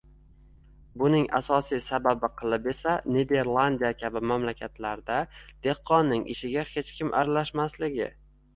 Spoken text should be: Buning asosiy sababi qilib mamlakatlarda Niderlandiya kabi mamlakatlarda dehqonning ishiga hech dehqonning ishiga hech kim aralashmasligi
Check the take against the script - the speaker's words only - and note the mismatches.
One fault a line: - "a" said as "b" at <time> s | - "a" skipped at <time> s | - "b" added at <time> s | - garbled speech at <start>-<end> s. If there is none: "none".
- "mamlakatlarda" said as "esa" at 2.7 s
- "dehqonning ishiga hech" skipped at 7.0 s